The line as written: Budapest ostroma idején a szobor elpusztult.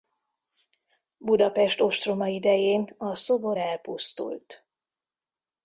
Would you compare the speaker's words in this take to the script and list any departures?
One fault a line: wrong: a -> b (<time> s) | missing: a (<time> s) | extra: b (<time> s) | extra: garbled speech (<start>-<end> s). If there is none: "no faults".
no faults